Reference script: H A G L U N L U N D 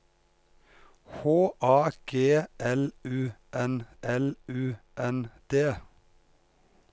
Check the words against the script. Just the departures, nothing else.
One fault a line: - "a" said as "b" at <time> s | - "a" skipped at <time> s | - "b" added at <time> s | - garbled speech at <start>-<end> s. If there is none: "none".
none